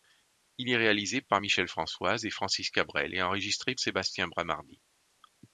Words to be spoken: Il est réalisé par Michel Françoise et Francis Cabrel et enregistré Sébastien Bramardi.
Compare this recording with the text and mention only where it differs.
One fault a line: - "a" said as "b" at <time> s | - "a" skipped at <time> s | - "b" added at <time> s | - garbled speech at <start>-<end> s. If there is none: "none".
none